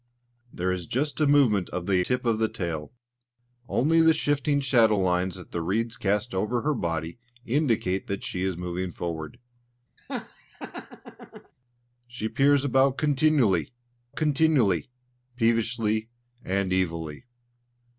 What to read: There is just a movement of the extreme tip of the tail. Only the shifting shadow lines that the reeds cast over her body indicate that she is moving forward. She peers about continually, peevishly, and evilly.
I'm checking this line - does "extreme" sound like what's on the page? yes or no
no